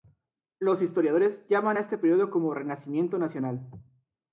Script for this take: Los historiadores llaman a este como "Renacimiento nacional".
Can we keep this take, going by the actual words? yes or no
no